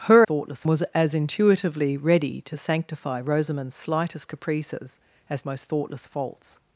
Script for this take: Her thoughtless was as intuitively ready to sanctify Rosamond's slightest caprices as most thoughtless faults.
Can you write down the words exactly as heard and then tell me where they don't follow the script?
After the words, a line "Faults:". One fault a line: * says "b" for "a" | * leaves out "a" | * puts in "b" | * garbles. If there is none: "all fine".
Her thoughtless was as intuitively ready to sanctify Rosamond's slightest caprices as most thoughtless faults.
Faults:
all fine